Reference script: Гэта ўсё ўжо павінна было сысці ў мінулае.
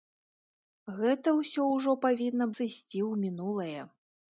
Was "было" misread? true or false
true